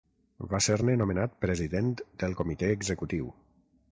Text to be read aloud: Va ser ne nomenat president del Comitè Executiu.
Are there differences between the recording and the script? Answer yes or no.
no